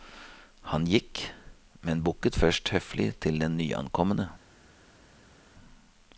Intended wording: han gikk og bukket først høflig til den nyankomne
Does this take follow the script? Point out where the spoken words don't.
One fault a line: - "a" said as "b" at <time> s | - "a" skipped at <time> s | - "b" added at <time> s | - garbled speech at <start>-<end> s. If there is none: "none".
- "og" said as "men" at 1.8 s